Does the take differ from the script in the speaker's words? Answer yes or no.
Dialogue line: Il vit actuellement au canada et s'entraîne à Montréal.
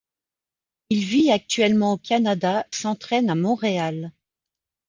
yes